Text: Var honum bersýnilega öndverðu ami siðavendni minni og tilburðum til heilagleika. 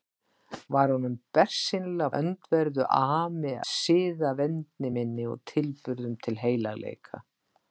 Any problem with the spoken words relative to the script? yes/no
no